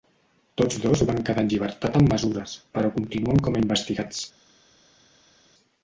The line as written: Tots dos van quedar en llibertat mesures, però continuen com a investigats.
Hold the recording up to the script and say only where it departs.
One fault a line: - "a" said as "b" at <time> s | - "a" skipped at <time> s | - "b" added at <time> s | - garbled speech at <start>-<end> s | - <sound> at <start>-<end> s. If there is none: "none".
- "amb" added at 2.0 s